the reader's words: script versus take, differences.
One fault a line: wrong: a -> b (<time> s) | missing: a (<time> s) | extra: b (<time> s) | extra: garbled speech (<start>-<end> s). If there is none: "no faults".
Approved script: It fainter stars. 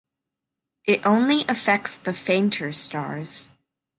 extra: only affects the (1.1 s)